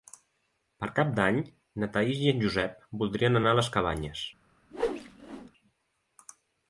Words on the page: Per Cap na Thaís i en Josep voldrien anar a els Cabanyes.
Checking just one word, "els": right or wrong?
wrong